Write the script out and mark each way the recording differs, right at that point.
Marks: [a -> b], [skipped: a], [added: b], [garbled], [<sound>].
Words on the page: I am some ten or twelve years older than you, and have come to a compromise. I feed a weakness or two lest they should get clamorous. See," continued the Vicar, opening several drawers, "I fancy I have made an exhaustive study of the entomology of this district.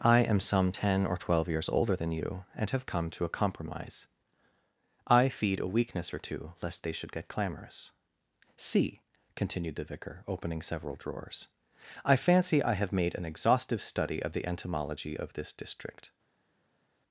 I am some ten or twelve years older than you, and have come to a compromise. I feed a weakness or two lest they should get clamorous. See," continued the Vicar, opening several drawers, "I fancy I have made an exhaustive study of the entomology of this district.